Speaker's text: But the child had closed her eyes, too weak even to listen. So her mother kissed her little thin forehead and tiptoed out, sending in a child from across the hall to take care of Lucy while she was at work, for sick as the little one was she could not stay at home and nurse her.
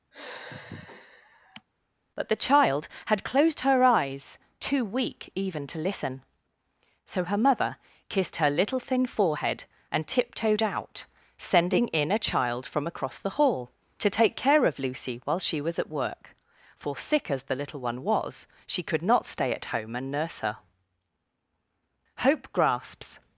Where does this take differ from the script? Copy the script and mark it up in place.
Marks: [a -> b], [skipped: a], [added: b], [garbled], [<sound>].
[sigh] But the child had closed her eyes, too weak even to listen. So her mother kissed her little thin forehead and tiptoed out, sending in a child from across the hall to take care of Lucy while she was at work, for sick as the little one was she could not stay at home and nurse her. [added: Hope grasps]